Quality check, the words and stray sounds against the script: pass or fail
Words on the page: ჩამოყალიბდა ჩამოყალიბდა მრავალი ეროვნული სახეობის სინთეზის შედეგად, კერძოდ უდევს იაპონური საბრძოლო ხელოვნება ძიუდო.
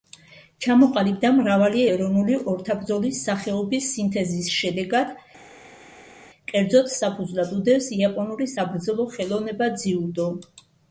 fail